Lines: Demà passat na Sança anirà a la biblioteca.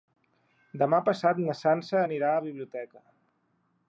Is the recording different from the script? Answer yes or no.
no